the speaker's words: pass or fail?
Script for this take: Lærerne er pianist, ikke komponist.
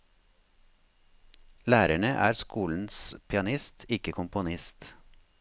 fail